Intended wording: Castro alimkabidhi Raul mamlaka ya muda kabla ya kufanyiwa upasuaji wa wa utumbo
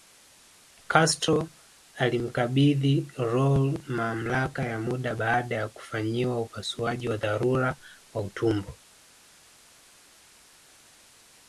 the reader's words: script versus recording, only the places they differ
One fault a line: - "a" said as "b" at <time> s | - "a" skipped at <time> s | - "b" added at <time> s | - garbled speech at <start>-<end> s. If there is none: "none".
- "kabla" said as "baada" at 5.1 s
- "dharura" added at 7.2 s